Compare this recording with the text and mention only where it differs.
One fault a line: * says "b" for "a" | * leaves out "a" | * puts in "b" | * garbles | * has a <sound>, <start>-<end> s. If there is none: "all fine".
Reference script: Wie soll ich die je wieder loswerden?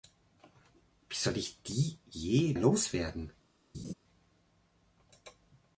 * leaves out "wieder"
* has a laugh, 3.7-3.9 s